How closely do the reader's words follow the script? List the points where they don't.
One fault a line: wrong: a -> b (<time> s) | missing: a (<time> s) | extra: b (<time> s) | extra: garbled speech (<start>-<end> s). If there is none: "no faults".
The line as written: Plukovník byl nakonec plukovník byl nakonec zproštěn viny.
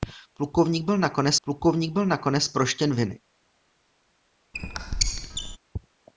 no faults